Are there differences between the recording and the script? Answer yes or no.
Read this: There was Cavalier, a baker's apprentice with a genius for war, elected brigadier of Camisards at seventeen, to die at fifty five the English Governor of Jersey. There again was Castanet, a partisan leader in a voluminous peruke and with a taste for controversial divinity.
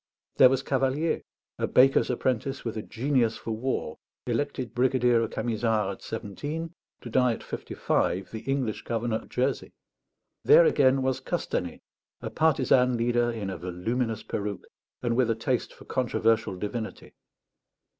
no